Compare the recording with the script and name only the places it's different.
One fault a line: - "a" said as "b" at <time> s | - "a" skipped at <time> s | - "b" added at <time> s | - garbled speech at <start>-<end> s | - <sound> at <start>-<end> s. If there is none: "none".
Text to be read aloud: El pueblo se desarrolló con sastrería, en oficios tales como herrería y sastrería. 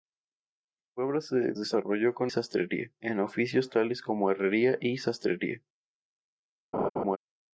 - laugh at 6.7-7.2 s